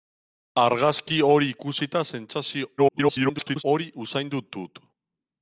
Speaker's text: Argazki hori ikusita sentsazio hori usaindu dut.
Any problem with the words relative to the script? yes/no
yes